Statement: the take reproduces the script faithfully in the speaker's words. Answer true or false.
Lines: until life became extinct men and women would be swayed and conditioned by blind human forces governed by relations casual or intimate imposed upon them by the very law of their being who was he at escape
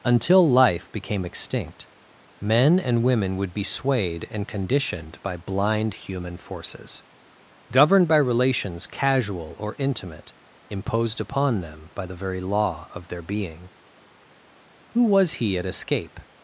true